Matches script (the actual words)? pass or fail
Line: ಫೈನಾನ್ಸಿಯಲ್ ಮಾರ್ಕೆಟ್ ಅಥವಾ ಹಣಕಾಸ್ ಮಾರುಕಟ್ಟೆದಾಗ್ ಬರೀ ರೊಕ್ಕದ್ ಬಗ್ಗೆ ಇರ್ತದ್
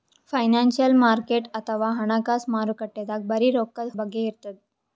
pass